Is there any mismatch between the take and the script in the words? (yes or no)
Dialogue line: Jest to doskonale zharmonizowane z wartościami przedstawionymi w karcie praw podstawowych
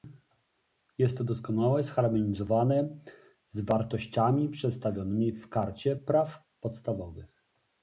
no